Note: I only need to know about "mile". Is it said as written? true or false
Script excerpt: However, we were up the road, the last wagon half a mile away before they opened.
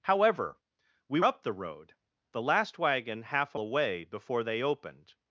false